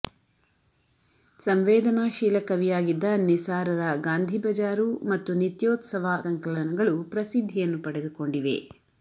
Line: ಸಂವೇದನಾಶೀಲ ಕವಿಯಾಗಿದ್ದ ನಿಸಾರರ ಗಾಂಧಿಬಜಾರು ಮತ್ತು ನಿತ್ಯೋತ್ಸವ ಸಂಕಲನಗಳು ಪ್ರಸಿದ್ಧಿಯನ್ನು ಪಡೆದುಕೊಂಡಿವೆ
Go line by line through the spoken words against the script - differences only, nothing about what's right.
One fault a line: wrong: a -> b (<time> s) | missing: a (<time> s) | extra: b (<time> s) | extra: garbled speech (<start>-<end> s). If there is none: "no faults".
no faults